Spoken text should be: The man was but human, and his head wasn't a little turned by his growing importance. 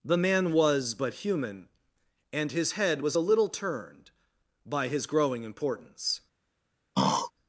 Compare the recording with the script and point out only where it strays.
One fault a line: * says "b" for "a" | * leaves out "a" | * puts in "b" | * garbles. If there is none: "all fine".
* says "was" for "wasn't"